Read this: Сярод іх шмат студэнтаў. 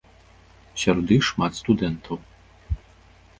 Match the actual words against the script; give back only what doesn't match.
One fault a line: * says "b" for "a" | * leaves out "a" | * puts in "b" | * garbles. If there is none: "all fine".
all fine